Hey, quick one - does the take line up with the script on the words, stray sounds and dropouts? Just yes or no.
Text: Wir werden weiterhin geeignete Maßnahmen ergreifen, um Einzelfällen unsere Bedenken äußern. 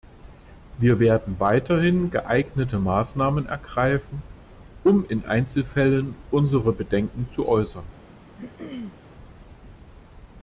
no